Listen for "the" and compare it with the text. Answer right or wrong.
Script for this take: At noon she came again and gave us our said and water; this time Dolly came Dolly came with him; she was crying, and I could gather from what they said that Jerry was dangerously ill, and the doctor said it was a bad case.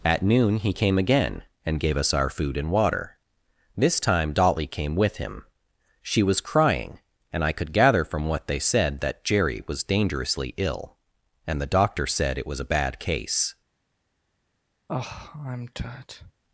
right